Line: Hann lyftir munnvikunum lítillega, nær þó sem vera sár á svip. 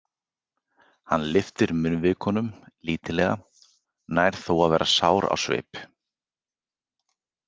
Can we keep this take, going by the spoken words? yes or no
no